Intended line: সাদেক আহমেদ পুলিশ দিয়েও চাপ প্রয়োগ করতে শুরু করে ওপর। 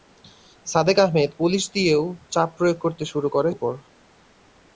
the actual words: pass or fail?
pass